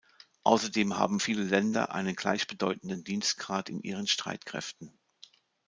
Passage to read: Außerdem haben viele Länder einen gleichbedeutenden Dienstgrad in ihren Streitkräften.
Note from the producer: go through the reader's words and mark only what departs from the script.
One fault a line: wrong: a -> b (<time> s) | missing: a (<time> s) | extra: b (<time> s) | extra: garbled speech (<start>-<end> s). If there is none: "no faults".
no faults